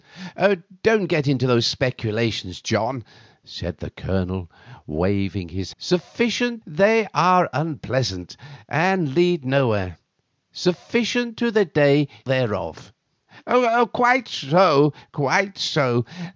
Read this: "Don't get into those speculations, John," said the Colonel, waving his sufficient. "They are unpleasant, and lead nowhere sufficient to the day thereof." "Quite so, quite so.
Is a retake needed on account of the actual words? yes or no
no